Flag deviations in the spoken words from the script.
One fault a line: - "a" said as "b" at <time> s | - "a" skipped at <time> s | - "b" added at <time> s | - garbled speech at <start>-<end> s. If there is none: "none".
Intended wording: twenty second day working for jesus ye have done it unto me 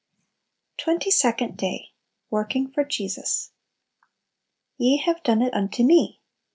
none